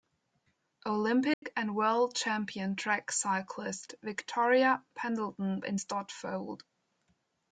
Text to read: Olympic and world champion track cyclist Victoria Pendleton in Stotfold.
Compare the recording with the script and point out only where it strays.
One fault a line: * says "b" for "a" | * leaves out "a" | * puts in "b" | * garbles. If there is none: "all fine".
all fine